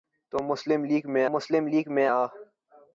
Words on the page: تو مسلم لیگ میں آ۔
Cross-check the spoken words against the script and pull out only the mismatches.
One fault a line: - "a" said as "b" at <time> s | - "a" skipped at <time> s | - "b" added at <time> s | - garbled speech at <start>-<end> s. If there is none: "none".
- "مسلم لیگ میں" added at 1.3 s